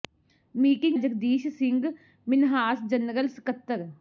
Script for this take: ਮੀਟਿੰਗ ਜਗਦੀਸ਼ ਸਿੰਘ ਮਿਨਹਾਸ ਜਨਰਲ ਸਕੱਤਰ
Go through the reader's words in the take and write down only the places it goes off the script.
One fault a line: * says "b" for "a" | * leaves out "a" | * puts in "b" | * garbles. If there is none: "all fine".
all fine